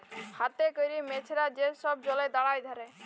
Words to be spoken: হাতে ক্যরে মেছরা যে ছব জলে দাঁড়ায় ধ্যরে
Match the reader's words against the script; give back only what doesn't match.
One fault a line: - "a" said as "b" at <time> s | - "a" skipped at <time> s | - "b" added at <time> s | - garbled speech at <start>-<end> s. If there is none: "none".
none